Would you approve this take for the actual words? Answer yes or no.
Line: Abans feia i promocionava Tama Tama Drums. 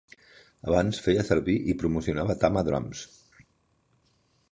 no